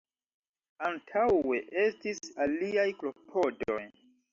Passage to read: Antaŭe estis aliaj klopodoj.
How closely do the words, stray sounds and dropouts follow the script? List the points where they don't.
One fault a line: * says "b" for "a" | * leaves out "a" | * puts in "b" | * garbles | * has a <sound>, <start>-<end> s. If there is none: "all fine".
all fine